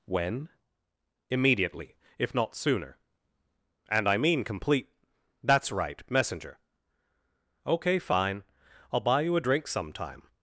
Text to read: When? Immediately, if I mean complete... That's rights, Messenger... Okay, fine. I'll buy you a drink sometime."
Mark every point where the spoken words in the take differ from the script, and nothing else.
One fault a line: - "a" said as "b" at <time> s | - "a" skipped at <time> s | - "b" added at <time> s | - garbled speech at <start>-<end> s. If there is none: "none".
- "not sooner And" added at 2.3 s
- "rights" said as "right" at 5.7 s